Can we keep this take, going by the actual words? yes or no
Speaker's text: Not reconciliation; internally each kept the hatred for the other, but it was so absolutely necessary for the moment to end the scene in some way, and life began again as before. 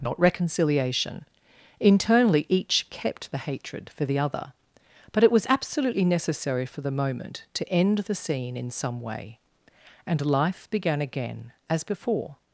no